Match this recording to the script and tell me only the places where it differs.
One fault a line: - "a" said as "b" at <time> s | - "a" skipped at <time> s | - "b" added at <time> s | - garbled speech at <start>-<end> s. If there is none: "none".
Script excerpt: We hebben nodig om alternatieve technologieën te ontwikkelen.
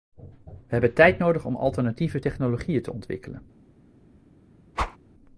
- "tijd" added at 0.9 s